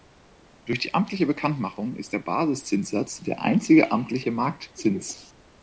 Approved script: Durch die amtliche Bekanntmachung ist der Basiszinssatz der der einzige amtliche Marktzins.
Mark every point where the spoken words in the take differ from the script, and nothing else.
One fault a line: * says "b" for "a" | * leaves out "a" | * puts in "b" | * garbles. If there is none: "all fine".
* leaves out "der"